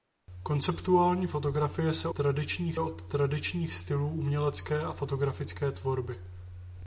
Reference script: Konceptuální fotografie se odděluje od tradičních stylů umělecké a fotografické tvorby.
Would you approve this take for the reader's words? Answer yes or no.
no